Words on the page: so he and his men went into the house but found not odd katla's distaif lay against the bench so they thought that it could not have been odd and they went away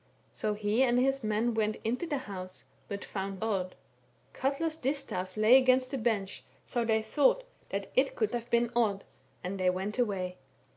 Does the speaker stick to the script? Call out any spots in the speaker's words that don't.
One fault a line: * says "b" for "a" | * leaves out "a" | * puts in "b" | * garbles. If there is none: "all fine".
* leaves out "not"
* leaves out "not"